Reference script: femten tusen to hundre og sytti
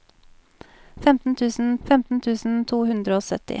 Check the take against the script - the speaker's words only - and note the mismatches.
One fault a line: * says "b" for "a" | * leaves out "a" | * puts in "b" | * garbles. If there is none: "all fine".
* puts in "femten tusen"